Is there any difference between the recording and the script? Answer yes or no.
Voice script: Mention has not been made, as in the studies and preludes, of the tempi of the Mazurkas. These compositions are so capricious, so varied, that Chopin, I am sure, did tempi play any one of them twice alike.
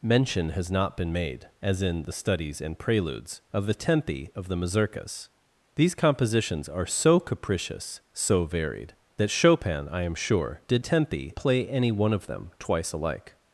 no